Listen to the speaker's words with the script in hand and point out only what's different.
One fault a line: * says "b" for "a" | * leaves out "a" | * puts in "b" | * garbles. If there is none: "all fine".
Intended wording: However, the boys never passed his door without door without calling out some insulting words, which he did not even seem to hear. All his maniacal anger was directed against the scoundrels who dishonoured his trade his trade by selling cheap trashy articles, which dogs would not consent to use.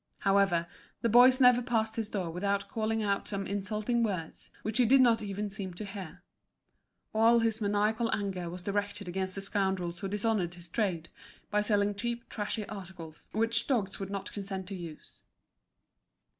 * leaves out "door without"
* leaves out "his trade"